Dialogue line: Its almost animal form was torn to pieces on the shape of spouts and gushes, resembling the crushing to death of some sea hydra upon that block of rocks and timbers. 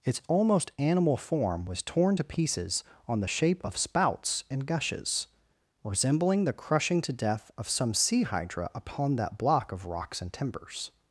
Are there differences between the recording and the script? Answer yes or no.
no